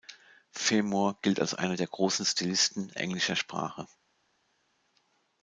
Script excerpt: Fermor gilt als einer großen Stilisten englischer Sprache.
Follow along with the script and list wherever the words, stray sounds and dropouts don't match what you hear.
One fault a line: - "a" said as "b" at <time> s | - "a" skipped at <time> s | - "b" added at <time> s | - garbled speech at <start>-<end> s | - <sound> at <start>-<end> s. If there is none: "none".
- "der" added at 1.7 s